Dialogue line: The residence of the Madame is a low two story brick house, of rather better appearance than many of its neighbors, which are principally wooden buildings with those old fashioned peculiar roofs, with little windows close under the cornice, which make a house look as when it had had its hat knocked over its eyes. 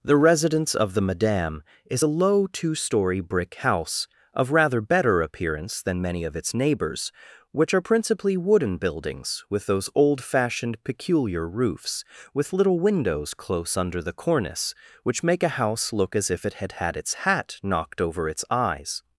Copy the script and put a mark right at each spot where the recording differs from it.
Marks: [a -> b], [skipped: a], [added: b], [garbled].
The residence of the Madame is a low two story brick house, of rather better appearance than many of its neighbors, which are principally wooden buildings with those old fashioned peculiar roofs, with little windows close under the cornice, which make a house look as [when -> if] it had had its hat knocked over its eyes.